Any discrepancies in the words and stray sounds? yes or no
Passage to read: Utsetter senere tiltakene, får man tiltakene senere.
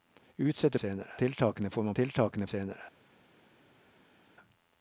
no